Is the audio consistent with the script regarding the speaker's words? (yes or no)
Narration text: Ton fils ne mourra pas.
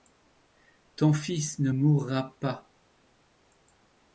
yes